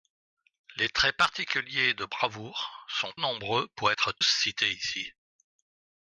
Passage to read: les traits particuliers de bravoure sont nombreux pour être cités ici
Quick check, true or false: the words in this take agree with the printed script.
true